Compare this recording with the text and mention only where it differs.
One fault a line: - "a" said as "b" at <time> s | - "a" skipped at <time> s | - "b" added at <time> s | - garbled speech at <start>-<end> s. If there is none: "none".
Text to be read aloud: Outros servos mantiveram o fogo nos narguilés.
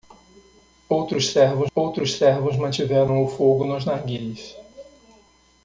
- "outros servos" added at 1.7 s